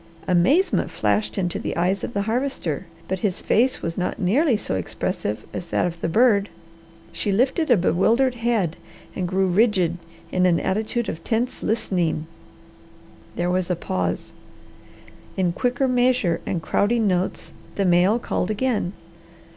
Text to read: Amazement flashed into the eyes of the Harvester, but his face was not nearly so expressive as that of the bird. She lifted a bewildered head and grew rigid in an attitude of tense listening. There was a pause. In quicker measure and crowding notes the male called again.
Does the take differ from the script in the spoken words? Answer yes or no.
no